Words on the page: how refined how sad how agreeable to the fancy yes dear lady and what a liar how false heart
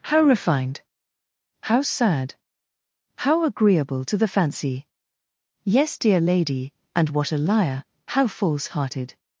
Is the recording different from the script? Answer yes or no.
yes